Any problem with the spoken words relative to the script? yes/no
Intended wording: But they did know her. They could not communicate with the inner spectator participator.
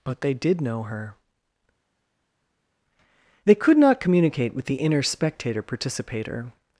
no